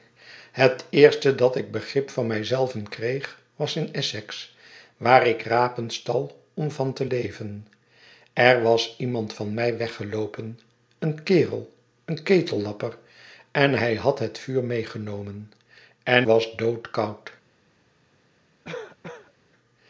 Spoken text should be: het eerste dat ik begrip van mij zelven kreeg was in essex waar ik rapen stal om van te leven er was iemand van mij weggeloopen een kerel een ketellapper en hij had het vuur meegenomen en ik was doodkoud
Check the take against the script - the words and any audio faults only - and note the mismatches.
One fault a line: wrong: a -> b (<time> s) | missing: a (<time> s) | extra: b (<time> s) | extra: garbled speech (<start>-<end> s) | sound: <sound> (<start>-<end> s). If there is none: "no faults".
missing: ik (16.3 s)
sound: cough (18.6-19.3 s)